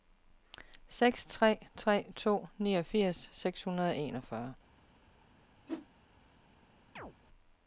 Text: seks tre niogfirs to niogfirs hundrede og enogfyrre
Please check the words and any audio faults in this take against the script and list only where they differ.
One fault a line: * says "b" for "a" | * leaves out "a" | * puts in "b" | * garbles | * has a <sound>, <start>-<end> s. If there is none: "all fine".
* says "tre" for "niogfirs"
* puts in "seks"
* has a whoosh, 5.7-5.9 s
* has a chirp, 7.0-7.1 s